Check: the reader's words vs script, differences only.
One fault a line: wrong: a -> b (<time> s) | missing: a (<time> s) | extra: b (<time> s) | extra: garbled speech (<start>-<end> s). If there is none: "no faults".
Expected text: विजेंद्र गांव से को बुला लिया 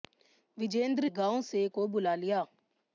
no faults